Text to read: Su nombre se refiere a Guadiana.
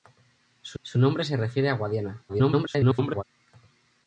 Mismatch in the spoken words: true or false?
true